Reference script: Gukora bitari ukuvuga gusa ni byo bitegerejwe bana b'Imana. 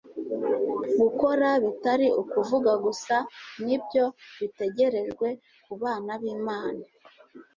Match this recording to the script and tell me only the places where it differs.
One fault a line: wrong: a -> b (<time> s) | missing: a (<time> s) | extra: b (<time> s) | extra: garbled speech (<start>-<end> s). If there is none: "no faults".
extra: ku (5.6 s)